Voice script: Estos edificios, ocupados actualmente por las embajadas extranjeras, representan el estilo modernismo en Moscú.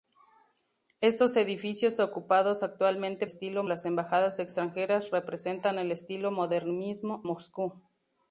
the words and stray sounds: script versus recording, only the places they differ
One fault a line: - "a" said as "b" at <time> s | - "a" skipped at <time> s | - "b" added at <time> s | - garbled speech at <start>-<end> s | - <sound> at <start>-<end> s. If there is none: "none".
- "por" said as "estilo" at 3.2 s
- "en" skipped at 7.3 s